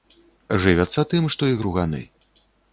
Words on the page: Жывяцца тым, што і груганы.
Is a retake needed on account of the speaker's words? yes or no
no